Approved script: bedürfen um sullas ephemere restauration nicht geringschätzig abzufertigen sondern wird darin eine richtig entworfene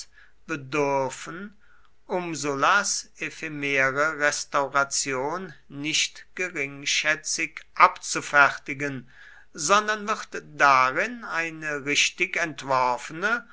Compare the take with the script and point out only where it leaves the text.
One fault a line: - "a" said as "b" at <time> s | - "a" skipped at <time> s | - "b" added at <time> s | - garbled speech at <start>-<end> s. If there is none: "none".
none